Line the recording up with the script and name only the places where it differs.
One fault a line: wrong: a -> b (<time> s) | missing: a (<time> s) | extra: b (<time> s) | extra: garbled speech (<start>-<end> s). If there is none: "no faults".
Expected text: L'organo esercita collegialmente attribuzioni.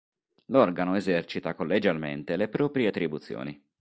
extra: le proprie (2.4 s)